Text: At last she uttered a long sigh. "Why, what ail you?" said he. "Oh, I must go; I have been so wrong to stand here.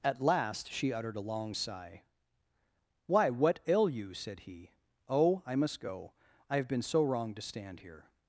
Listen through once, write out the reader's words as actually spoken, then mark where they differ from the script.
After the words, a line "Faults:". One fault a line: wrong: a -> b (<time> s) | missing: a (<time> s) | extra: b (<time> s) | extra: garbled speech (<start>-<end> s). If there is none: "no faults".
At last she uttered a long sigh. "Why, what ail you?" said he. "Oh, I must go; I have been so wrong to stand here.
Faults:
no faults